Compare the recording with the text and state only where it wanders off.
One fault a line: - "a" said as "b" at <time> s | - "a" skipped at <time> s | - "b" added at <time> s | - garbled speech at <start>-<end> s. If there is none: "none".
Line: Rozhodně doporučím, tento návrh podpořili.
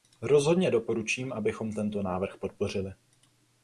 - "abychom" added at 1.3 s